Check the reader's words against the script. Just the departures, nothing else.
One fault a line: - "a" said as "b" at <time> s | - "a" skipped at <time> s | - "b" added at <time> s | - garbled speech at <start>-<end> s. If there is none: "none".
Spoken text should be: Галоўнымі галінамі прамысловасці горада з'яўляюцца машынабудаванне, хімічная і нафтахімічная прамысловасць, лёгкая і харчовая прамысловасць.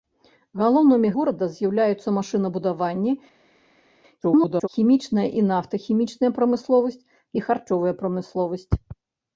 - "галінамі прамысловасці" skipped at 1.1 s
- garbled speech at 4.2-4.7 s
- "лёгкая" skipped at 7.0 s